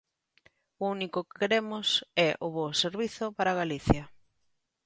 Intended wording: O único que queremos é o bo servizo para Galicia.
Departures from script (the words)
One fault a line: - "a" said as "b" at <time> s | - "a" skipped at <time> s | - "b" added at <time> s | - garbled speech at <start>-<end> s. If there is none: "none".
none